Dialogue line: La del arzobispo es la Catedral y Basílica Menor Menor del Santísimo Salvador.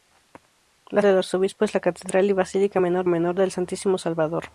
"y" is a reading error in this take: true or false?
false